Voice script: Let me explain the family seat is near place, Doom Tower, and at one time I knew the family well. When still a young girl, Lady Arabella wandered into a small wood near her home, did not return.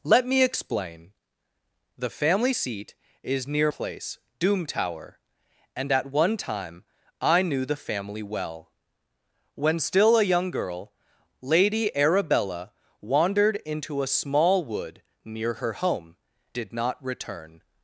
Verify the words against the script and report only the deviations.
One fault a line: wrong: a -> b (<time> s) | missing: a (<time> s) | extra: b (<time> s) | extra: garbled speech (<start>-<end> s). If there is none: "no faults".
no faults